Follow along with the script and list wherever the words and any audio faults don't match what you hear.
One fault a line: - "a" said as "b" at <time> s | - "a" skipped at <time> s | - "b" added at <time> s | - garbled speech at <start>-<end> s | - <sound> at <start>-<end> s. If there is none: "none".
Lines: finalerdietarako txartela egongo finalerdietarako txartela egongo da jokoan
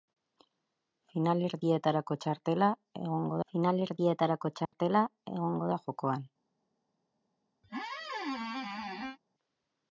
- dropout at 4.7-4.7 s
- squeak at 7.6-9.2 s